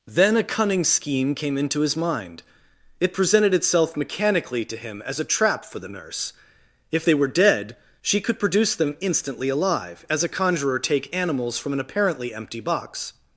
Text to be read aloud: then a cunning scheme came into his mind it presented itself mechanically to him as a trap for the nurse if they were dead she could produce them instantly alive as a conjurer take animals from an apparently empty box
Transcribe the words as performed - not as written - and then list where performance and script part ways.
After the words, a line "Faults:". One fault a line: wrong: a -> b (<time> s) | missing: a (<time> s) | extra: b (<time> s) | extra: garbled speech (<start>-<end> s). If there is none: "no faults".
then a cunning scheme came into his mind it presented itself mechanically to him as a trap for the nurse if they were dead she could produce them instantly alive as a conjurer take animals from an apparently empty box
Faults:
no faults